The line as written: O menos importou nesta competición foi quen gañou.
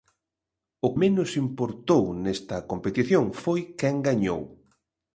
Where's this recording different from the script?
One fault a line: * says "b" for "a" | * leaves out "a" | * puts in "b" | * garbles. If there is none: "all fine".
all fine